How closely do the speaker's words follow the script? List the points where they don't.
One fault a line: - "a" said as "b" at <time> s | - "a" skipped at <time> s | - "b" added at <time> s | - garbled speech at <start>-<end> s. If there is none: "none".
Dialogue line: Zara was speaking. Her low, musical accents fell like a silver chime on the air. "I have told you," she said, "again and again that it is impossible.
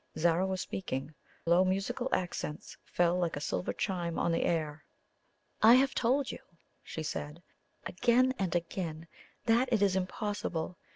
- "Her" skipped at 1.1 s